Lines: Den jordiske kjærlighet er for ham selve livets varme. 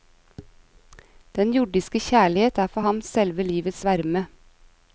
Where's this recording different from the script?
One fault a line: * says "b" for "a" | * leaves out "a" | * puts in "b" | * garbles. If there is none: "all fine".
all fine